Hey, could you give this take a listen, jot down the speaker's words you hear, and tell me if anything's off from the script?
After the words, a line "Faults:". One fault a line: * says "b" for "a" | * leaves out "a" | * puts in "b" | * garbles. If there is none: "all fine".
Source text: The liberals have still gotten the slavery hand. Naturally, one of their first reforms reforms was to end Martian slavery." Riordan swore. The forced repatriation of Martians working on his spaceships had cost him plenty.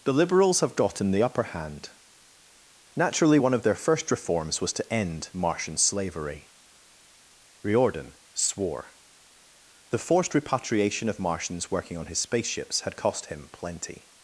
The liberals have gotten the upper hand. Naturally, one of their first reforms was to end Martian slavery." Riordan swore. The forced repatriation of Martians working on his spaceships had cost him plenty.
Faults:
* leaves out "still"
* says "upper" for "slavery"
* leaves out "reforms"